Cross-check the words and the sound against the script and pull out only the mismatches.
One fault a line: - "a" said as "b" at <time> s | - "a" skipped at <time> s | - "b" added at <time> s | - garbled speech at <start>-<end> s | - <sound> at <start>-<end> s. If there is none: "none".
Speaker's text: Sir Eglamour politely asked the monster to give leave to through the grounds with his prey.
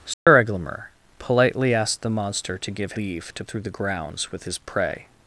- dropout at 0.1-0.3 s